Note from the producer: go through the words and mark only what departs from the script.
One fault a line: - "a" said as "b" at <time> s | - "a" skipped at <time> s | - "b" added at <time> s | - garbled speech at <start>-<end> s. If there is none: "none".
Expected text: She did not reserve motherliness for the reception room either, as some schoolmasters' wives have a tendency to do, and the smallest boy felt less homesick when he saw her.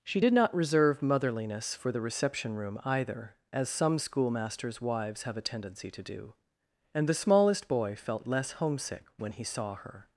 none